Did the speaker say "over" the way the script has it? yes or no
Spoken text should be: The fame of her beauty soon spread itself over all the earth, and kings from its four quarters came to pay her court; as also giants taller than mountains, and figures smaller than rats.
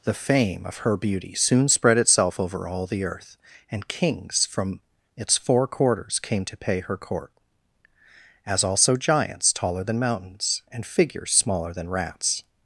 yes